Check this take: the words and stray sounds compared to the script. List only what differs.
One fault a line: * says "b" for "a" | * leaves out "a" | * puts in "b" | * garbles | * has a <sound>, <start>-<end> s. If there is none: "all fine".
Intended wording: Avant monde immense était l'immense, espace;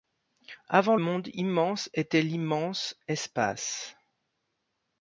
all fine